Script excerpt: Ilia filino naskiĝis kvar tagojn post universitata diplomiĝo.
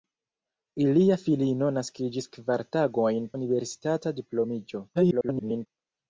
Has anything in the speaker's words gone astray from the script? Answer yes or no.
yes